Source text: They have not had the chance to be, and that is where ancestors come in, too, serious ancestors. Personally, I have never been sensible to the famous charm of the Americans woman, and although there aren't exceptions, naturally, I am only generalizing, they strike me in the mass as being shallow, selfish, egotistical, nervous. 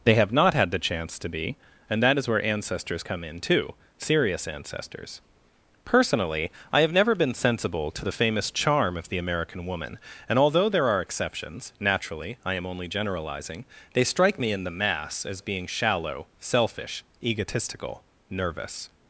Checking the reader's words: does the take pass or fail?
fail